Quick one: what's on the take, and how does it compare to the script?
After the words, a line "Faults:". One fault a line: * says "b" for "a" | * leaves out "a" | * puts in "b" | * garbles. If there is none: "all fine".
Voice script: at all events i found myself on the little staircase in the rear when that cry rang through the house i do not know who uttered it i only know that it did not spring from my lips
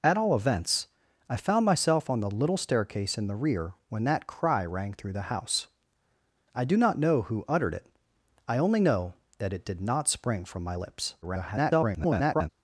at all events i found myself on the little staircase in the rear when that cry rang through the house i do not know who uttered it i only know that it did not spring from my lips [garbled]
Faults:
* garbles